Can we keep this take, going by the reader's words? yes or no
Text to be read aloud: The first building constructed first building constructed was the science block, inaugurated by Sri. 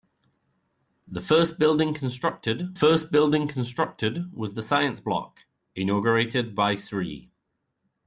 yes